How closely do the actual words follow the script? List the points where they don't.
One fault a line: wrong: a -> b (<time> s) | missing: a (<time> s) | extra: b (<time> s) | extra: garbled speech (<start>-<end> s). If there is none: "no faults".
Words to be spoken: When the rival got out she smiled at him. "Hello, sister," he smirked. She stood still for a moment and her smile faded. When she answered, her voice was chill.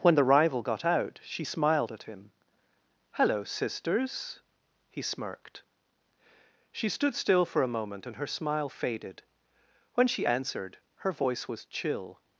wrong: sister -> sisters (3.4 s)